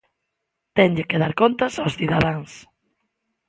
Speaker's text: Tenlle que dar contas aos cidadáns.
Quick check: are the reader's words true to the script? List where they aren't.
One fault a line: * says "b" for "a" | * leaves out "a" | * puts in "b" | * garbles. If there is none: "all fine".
all fine